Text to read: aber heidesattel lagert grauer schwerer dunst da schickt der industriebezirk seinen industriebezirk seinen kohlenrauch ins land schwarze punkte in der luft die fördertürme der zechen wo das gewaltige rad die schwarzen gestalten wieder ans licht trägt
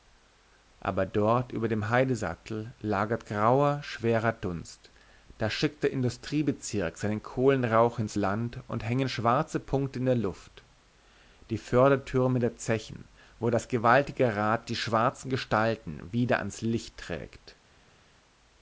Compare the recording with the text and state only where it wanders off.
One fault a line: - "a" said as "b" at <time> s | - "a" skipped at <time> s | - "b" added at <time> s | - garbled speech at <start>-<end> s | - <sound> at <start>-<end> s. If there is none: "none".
- "dort über dem" added at 1.1 s
- "industriebezirk seinen" skipped at 7.2 s
- "und hängen" added at 8.7 s